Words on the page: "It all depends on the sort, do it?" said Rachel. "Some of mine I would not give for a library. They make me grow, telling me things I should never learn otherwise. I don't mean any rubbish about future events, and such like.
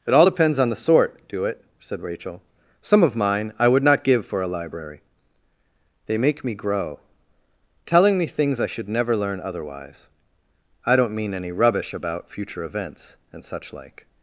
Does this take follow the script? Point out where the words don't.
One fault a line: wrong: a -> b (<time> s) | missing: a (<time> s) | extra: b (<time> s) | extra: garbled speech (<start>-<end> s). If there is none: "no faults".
no faults